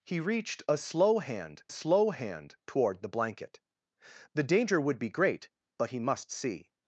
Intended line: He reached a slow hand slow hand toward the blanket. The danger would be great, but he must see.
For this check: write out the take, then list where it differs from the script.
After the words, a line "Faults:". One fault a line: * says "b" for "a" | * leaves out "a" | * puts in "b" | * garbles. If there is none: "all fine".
He reached a slow hand slow hand toward the blanket. The danger would be great, but he must see.
Faults:
all fine